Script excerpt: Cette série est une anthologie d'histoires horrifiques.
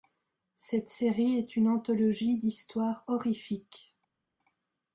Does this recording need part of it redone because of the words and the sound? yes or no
no